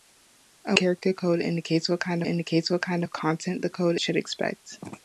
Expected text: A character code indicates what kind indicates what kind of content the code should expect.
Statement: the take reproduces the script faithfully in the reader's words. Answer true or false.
true